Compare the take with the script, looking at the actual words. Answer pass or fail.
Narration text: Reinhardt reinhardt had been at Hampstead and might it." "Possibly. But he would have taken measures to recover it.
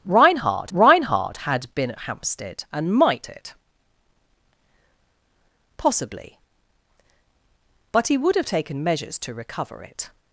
pass